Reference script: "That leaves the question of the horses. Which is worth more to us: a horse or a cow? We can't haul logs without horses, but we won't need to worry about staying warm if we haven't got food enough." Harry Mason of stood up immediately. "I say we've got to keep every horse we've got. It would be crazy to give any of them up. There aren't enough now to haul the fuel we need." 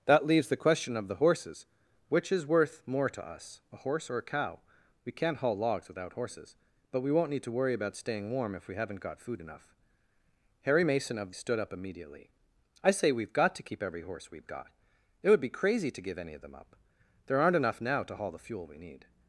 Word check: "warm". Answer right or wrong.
right